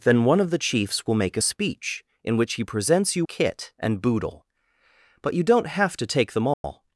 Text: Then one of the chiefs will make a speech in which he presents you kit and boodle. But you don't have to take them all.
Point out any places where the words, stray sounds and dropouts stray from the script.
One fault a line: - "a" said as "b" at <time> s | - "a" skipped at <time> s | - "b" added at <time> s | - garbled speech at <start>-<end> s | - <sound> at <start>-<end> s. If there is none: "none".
- dropout at 6.5-6.6 s